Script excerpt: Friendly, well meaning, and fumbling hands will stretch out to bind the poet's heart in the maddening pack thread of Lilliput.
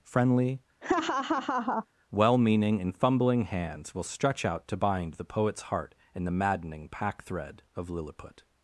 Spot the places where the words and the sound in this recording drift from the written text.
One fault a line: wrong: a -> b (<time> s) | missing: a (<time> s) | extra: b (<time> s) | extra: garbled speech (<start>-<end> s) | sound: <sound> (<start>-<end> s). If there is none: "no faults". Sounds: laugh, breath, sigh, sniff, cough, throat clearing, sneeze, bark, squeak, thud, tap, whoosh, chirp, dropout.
sound: laugh (0.8-1.9 s)